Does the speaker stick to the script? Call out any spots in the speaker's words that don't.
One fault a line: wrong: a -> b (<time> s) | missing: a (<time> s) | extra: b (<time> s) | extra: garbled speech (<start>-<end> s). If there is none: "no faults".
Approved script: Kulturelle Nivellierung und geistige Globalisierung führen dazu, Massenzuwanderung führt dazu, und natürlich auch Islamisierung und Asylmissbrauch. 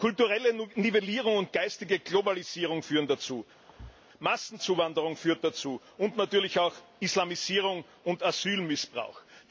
no faults